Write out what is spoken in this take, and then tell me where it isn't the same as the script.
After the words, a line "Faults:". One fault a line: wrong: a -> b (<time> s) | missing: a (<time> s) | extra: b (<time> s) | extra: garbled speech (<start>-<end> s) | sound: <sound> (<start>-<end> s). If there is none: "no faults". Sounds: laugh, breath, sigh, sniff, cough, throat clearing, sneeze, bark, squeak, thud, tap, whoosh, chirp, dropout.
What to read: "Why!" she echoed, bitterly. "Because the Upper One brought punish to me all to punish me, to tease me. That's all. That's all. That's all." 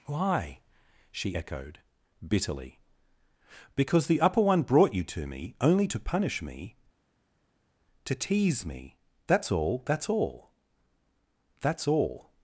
"Why!" she echoed, bitterly. "Because the Upper One brought you to me only to punish me, to tease me. That's all. That's all. That's all."
Faults:
wrong: punish -> you (4.9 s)
wrong: all -> only (5.6 s)